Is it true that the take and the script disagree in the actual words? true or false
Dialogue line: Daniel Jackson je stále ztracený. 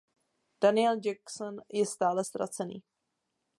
false